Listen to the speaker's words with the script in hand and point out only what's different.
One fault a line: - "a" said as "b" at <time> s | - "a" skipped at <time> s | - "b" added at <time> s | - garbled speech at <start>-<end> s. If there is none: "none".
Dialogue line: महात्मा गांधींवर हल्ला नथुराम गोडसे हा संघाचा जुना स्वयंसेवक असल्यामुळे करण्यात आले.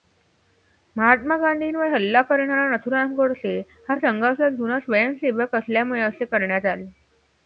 - "करणारा" added at 2.2 s
- "असे" added at 6.0 s